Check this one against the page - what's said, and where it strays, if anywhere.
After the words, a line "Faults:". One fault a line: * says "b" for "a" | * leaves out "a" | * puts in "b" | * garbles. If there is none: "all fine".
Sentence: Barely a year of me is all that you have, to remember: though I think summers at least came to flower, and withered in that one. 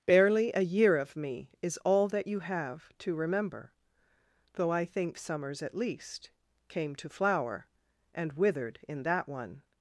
Barely a year of me is all that you have, to remember: though I think summers at least came to flower, and withered in that one.
Faults:
all fine